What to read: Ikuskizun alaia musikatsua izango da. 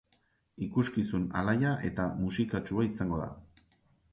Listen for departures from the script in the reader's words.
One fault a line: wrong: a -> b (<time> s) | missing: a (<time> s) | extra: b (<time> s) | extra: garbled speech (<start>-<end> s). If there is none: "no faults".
extra: eta (1.9 s)